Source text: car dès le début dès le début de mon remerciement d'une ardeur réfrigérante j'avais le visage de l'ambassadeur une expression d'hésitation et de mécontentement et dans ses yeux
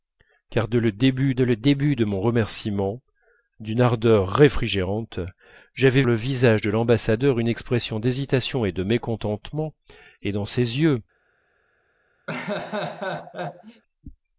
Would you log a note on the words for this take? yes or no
no